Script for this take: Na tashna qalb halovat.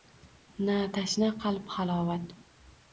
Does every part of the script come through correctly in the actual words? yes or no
yes